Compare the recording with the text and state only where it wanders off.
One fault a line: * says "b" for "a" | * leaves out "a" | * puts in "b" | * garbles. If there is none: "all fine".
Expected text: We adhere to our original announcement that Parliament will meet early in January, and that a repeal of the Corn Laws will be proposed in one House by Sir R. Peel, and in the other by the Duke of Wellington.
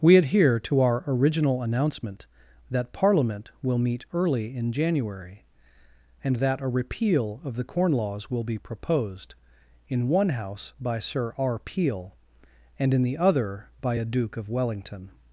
* says "a" for "the"